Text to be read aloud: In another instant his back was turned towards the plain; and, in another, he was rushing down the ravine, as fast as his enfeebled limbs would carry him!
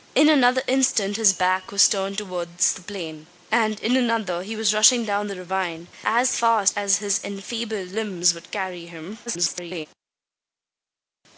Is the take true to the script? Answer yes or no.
no